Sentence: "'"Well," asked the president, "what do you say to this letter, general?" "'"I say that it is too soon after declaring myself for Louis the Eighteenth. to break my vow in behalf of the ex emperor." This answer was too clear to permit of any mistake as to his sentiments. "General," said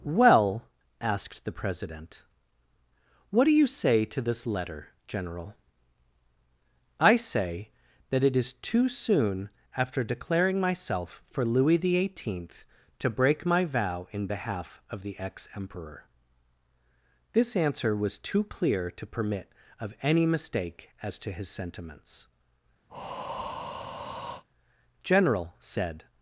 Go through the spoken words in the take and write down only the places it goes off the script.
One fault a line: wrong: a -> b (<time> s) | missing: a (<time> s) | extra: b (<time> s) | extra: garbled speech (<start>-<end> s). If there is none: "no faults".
no faults